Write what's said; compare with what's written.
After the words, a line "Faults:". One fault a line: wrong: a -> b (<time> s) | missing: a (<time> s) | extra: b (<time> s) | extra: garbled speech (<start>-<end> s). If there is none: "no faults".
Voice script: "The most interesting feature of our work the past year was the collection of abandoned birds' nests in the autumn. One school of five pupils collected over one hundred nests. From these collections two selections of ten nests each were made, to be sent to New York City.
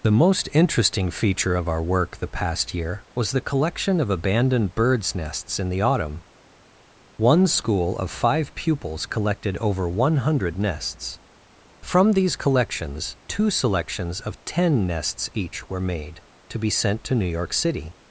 "The most interesting feature of our work the past year was the collection of abandoned birds' nests in the autumn. One school of five pupils collected over one hundred nests. From these collections two selections of ten nests each were made, to be sent to New York City.
Faults:
no faults